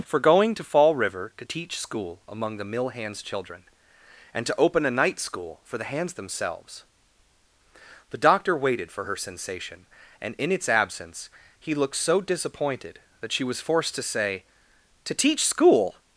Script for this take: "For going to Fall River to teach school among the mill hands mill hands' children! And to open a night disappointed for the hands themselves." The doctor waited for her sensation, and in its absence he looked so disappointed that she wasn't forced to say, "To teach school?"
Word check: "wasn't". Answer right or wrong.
wrong